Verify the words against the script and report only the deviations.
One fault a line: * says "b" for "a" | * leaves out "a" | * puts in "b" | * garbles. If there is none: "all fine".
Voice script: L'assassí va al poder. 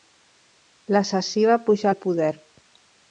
* puts in "pujar"